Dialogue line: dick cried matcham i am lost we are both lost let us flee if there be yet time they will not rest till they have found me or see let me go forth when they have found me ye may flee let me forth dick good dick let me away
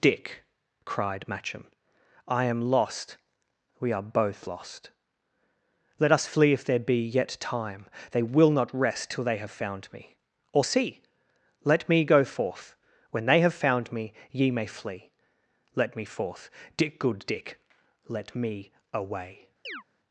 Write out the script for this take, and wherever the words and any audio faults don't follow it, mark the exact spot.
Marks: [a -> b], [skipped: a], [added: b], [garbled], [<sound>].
dick cried matcham i am lost we are both lost let us flee if there be yet time they will not rest till they have found me or see let me go forth when they have found me ye may flee let me forth dick good dick let me away [chirp]